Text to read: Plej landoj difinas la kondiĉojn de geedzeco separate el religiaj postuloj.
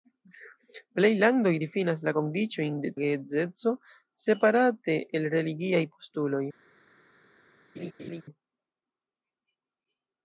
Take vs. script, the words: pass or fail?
pass